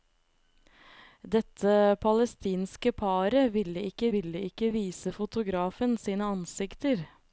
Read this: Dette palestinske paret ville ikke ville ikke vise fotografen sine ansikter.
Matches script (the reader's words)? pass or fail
pass